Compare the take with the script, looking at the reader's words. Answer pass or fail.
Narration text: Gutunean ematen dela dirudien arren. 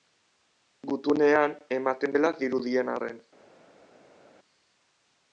pass